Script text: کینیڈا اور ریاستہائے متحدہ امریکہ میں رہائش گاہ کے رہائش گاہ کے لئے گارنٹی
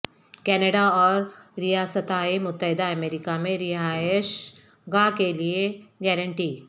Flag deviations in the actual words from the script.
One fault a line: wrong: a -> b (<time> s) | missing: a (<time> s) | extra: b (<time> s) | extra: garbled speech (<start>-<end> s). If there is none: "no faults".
missing: رہائش گاہ کے (5.3 s)